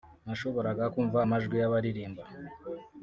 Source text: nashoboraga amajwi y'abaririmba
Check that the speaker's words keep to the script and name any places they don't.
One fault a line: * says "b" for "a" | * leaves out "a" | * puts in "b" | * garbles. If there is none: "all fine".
* puts in "kumva"